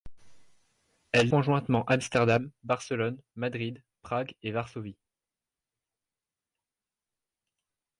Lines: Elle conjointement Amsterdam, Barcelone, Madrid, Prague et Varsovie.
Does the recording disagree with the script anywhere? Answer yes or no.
no